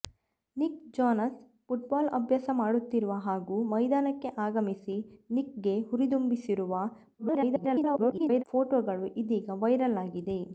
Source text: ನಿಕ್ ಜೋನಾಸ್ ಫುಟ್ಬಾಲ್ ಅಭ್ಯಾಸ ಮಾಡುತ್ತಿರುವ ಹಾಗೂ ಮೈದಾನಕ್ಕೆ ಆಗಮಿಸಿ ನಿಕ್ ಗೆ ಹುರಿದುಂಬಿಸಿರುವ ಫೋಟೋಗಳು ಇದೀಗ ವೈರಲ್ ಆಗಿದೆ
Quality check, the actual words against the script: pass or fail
fail